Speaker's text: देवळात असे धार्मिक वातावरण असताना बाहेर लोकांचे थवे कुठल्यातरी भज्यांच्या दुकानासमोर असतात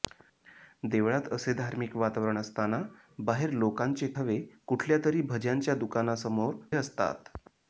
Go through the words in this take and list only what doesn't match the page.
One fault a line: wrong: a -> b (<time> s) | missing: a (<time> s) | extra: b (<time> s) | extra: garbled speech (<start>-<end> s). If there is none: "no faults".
no faults